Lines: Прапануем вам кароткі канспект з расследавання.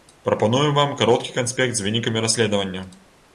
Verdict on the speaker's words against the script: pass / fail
fail